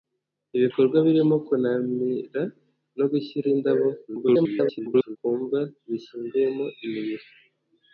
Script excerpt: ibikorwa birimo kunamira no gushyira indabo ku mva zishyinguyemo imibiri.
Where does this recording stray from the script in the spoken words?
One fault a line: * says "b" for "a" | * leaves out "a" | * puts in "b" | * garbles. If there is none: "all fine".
* garbles